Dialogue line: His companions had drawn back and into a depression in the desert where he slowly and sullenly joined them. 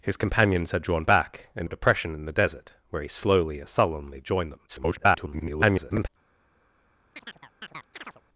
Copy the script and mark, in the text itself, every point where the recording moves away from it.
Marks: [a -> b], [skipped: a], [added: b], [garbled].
His companions had drawn back and [skipped: into] a depression in the desert where he slowly and sullenly joined them. [garbled]